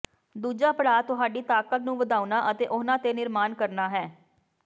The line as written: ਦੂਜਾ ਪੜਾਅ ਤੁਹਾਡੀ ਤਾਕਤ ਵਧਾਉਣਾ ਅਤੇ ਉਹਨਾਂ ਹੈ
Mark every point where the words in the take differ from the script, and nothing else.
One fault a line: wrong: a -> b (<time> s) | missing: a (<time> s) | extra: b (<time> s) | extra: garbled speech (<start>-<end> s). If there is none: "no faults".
extra: ਨੂੰ (1.8 s)
extra: ਤੇ ਨਿਰਮਾਣ ਕਰਨਾ (3.0 s)